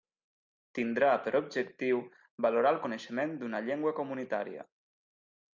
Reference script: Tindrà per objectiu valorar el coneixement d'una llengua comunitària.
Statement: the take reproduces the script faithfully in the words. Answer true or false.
true